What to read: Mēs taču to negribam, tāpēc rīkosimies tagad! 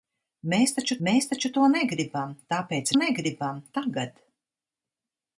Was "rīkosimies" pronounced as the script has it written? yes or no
no